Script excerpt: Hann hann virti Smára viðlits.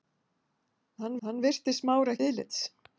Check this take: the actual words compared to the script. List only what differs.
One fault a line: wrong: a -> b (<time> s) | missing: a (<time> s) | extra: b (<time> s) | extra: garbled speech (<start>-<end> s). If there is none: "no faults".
no faults